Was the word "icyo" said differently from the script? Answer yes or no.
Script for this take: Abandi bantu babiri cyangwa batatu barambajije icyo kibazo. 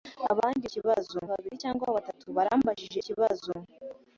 yes